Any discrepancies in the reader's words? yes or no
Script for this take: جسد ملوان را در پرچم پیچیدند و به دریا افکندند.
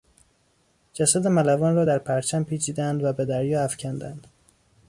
no